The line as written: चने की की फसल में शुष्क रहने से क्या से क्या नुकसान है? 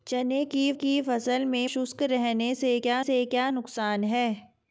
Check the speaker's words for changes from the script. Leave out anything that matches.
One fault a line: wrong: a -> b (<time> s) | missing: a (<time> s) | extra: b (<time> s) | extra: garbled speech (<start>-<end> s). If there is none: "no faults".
no faults